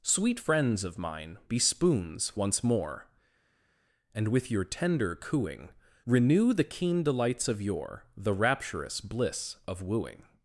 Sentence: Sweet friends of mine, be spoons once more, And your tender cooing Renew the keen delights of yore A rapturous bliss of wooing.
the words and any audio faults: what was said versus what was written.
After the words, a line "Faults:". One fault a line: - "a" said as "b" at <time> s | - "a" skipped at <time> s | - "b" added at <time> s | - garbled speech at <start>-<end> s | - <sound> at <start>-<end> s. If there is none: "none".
Sweet friends of mine, be spoons once more, And with your tender cooing Renew the keen delights of yore The rapturous bliss of wooing.
Faults:
- "with" added at 4.3 s
- "A" said as "The" at 8.2 s